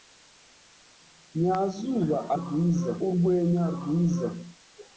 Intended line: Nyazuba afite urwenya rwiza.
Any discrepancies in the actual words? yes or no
yes